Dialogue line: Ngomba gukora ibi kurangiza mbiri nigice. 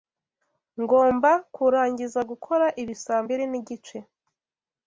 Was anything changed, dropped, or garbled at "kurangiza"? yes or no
yes